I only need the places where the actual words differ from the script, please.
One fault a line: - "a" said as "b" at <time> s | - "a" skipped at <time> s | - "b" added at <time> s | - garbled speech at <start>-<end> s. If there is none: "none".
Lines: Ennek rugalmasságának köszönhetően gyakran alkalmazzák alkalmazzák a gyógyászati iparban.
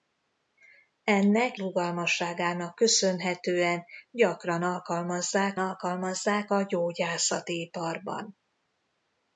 none